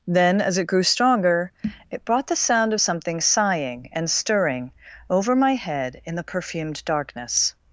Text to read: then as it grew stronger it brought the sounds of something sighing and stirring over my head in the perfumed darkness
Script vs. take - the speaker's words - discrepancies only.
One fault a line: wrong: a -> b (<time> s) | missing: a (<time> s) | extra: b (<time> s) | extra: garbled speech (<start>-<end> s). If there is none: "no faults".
wrong: sounds -> sound (2.4 s)